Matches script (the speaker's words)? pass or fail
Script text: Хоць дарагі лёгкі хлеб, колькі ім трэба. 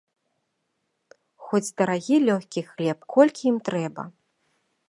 pass